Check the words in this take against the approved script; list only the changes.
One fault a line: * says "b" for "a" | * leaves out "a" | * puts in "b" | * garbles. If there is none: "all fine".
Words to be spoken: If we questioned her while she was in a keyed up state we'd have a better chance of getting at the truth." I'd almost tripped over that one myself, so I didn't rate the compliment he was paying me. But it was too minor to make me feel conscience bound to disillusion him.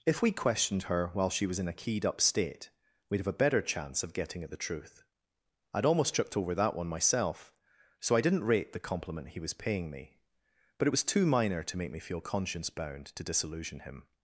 all fine